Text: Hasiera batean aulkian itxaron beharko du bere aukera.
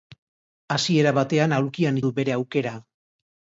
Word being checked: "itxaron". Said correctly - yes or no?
no